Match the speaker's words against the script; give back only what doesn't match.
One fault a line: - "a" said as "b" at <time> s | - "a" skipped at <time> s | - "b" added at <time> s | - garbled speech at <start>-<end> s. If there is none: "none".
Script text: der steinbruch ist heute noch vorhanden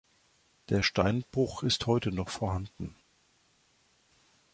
none